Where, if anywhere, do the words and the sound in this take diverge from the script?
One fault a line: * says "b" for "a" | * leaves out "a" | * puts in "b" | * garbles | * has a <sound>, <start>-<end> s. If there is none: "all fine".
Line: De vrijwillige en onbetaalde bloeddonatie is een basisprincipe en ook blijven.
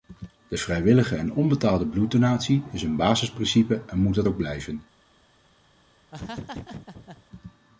* puts in "moet dat"
* has a laugh, 6.1-7.2 s